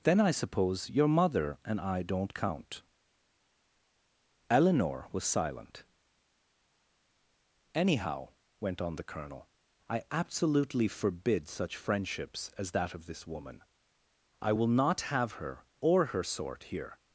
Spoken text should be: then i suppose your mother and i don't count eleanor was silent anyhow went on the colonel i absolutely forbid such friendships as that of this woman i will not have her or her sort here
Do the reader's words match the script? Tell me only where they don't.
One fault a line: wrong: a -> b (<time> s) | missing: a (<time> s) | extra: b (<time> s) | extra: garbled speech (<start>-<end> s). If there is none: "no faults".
no faults